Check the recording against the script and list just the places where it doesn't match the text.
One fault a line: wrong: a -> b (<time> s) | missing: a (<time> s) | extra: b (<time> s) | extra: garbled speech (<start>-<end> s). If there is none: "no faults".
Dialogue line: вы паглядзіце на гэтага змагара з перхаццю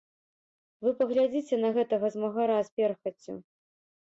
no faults